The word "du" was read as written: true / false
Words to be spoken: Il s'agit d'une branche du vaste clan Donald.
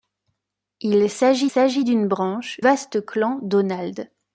false